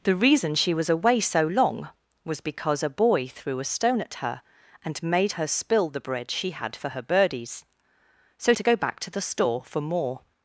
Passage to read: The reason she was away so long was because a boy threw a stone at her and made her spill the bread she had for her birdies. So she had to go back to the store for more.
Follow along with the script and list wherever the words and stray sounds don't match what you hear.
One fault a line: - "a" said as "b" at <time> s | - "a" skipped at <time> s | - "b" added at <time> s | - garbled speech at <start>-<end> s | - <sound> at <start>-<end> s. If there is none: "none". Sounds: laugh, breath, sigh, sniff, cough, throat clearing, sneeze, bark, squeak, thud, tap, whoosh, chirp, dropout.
- "she had" skipped at 8.5 s